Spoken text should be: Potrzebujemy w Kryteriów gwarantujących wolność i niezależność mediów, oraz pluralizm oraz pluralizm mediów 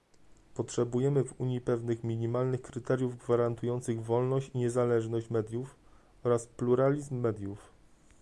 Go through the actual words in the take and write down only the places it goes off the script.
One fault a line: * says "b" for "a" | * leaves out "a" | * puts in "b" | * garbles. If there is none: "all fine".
* puts in "Unii pewnych minimalnych"
* leaves out "oraz pluralizm"